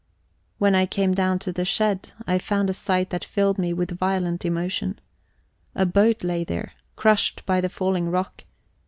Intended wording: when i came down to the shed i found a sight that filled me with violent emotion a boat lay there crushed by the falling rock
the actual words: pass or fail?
pass